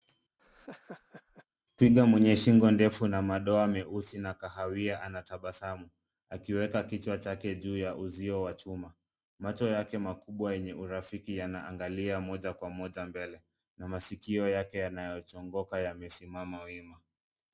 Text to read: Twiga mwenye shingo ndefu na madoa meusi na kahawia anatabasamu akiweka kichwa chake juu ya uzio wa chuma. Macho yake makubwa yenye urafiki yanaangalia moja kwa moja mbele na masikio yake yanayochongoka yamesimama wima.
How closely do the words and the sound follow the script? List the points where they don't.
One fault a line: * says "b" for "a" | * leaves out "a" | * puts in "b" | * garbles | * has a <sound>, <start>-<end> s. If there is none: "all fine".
* has a laugh, 0.4-1.5 s